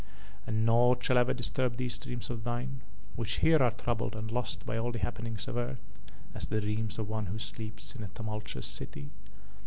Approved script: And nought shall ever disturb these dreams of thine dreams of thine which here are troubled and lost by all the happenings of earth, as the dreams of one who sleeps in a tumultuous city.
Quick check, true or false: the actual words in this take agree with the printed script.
false